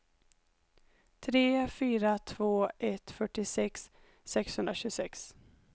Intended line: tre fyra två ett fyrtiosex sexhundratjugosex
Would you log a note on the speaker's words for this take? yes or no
no